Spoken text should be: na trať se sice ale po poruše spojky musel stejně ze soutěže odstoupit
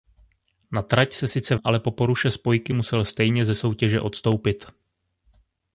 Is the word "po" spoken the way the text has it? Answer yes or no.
yes